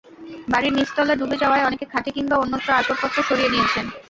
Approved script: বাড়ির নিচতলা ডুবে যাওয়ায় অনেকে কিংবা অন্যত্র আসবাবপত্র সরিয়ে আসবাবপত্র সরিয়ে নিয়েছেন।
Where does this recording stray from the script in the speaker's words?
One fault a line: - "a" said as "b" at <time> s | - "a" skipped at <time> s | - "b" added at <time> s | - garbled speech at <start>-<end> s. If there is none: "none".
- "খাটে" added at 1.8 s
- "আসবাবপত্র সরিয়ে" skipped at 3.5 s